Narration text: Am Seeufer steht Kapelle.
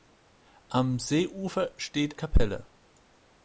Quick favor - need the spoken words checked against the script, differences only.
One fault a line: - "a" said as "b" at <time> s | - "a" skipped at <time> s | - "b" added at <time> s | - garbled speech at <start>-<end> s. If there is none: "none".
none